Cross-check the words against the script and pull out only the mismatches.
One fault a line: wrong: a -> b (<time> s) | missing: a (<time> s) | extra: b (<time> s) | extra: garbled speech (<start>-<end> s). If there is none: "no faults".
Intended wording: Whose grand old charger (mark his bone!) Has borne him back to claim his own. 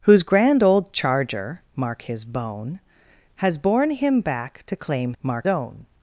wrong: his -> mark (5.2 s)